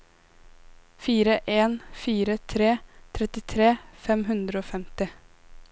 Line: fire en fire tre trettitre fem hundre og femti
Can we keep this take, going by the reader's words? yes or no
yes